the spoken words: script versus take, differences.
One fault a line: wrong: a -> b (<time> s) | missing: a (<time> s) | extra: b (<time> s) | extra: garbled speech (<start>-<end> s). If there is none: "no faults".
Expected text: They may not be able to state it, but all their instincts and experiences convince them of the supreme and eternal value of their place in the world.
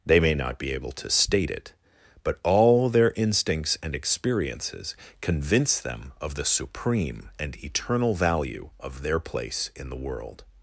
no faults